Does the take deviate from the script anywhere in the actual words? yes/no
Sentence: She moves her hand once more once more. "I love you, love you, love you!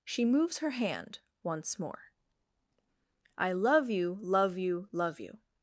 yes